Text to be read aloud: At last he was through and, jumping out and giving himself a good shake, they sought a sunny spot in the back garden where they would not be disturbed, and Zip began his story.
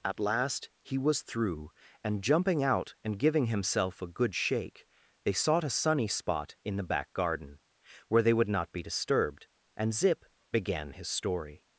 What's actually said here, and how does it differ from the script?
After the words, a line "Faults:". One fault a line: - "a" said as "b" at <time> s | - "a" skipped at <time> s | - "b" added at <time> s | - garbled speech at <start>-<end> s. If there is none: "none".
At last he was through and, jumping out and giving himself a good shake, they sought a sunny spot in the back garden where they would not be disturbed, and Zip began his story.
Faults:
none